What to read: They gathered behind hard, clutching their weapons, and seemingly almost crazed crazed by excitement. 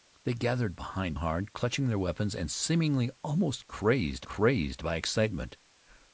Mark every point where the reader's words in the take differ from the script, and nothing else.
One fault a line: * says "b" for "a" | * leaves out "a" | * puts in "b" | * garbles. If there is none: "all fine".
all fine